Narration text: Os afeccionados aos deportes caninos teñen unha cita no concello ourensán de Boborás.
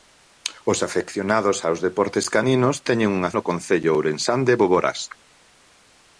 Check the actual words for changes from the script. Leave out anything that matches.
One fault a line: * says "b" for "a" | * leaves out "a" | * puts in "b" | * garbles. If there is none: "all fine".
* leaves out "cita"